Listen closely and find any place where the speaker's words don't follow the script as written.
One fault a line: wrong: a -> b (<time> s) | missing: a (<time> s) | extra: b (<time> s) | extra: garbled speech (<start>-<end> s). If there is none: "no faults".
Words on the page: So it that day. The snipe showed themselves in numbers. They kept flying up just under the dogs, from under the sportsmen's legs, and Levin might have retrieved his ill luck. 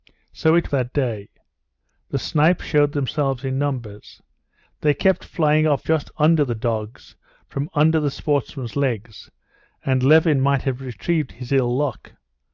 no faults